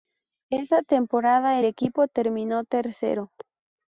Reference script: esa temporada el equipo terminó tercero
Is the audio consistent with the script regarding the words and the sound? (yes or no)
no